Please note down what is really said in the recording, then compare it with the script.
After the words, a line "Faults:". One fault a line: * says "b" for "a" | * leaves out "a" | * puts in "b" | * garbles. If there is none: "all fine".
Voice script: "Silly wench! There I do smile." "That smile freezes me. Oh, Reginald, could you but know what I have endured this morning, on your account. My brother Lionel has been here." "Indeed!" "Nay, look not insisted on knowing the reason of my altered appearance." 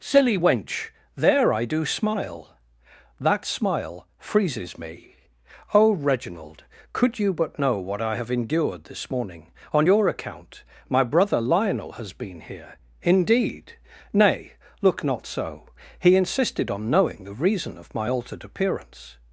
"Silly wench! There I do smile." "That smile freezes me. Oh, Reginald, could you but know what I have endured this morning, on your account. My brother Lionel has been here." "Indeed!" "Nay, look not so. He insisted on knowing the reason of my altered appearance."
Faults:
* puts in "so He"